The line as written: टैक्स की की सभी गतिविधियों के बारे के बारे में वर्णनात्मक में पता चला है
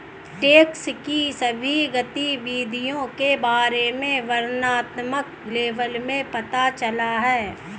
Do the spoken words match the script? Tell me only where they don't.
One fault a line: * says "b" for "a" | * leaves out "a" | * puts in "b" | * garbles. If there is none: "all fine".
* leaves out "की"
* leaves out "के बारे"
* puts in "लेबल"